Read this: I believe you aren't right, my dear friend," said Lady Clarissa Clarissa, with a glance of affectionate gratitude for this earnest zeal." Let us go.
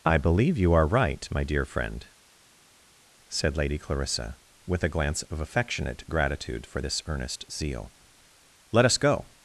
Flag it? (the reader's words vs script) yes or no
yes